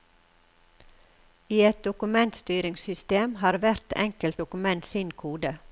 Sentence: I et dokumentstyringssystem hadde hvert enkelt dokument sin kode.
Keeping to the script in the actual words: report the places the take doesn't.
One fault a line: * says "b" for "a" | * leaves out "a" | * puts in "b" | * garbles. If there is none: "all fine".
* says "har" for "hadde"